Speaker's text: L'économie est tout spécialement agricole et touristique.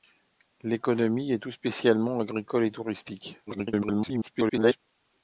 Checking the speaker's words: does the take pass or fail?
fail